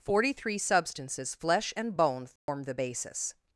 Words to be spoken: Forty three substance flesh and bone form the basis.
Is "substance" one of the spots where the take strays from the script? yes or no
yes